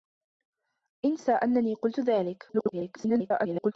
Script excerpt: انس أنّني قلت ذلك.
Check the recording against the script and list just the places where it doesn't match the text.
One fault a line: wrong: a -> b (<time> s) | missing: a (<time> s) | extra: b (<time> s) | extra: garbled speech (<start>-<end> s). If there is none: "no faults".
extra: garbled speech (2.5-3.7 s)